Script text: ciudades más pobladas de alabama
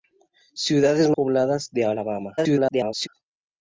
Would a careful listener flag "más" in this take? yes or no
yes